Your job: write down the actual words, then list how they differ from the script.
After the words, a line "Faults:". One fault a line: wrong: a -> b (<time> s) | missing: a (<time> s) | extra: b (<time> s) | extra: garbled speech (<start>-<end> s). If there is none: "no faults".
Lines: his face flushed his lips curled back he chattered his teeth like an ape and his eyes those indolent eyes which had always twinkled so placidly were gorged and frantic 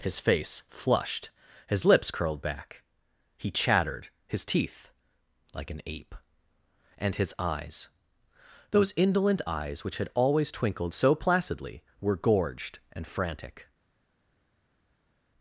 his face flushed his lips curled back he chattered his teeth like an ape and his eyes those indolent eyes which had always twinkled so placidly were gorged and frantic
Faults:
no faults